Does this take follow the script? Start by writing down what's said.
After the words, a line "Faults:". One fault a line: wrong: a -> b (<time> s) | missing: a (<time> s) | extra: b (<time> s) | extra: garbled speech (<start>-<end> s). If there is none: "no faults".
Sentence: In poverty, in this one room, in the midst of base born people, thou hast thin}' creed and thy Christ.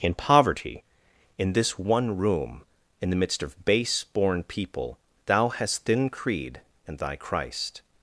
In poverty, in this one room, in the midst of base born people, thou hast thin}' creed and thy Christ.
Faults:
no faults